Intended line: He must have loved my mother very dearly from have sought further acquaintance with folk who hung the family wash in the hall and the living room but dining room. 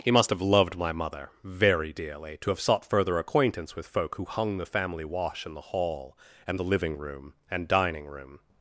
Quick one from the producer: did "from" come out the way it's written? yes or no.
no